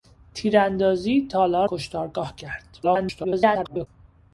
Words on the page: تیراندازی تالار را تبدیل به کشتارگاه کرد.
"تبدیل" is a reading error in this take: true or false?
true